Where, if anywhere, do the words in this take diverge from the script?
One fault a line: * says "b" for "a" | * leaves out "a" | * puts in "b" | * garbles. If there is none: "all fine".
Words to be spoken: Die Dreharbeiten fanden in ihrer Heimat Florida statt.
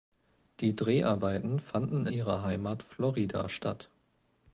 * leaves out "in"